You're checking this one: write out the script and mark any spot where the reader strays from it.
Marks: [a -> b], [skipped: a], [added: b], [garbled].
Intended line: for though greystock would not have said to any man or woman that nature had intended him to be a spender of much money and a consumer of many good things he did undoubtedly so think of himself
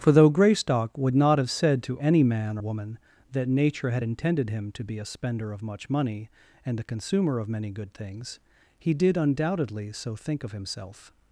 for though greystock would not have said to any man [skipped: or] woman that nature had intended him to be a spender of much money and a consumer of many good things he did undoubtedly so think of himself